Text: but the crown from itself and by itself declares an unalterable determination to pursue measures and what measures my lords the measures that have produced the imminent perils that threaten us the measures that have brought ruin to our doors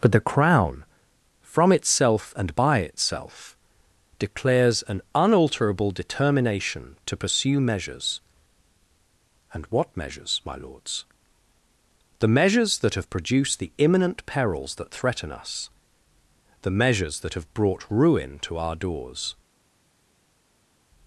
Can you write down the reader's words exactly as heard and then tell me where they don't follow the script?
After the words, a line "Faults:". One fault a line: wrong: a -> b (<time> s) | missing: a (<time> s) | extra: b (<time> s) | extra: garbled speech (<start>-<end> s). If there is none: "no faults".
but the crown from itself and by itself declares an unalterable determination to pursue measures and what measures my lords the measures that have produced the imminent perils that threaten us the measures that have brought ruin to our doors
Faults:
no faults